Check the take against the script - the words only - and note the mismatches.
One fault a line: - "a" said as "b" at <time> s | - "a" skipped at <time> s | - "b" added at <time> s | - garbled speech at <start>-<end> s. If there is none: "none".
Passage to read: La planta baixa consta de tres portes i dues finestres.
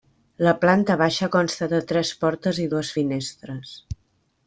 none